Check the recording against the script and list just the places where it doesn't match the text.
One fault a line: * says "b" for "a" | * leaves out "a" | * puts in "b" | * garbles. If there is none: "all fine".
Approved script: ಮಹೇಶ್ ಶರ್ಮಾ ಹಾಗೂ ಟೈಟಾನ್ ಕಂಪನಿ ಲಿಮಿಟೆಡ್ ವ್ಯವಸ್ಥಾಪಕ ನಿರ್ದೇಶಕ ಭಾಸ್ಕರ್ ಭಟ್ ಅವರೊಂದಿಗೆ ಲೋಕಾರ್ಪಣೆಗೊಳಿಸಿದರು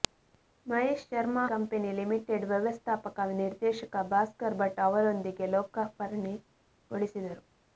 * leaves out "ಹಾಗೂ ಟೈಟಾನ್"